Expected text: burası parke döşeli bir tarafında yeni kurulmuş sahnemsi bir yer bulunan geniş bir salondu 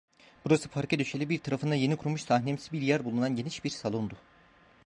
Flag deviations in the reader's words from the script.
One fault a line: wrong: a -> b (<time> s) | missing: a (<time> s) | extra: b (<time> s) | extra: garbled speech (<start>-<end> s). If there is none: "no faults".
no faults